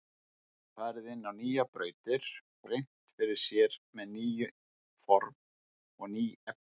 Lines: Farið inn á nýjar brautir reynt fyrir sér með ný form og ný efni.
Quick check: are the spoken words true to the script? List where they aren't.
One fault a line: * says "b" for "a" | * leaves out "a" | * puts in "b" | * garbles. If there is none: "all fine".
all fine